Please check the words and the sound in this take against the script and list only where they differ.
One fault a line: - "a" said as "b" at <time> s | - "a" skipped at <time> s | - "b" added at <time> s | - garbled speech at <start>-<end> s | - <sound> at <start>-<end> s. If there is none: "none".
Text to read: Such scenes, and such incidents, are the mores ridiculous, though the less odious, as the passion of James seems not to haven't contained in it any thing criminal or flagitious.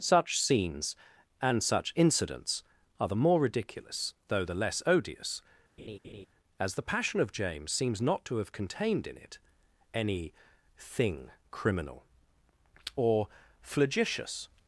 - "mores" said as "more" at 3.1 s
- laugh at 5.8-6.3 s
- "haven't" said as "have" at 8.4 s